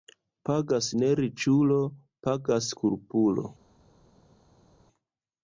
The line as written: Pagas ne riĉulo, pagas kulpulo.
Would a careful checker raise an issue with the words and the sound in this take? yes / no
no